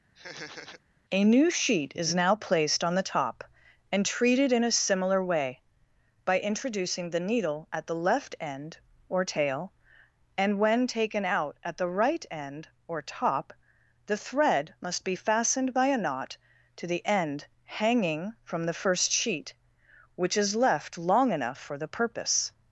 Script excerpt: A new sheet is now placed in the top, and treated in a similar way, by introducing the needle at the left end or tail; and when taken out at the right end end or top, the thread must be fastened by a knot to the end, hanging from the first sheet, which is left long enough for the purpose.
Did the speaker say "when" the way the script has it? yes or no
yes